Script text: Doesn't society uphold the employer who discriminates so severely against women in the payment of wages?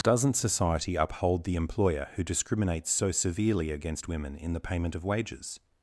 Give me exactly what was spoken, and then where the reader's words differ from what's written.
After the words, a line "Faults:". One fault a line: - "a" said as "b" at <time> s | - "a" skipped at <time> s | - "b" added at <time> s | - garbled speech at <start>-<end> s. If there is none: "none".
Doesn't society uphold the employer who discriminates so severely against women in the payment of wages?
Faults:
none